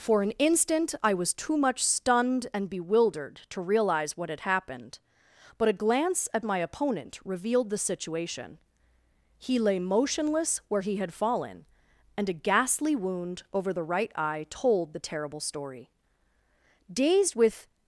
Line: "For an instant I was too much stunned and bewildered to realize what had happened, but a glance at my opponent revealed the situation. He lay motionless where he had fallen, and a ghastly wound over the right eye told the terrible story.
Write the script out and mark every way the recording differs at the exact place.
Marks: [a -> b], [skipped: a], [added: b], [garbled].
"For an instant I was too much stunned and bewildered to realize what had happened, but a glance at my opponent revealed the situation. He lay motionless where he had fallen, and a ghastly wound over the right eye told the terrible story. [added: Dazed with]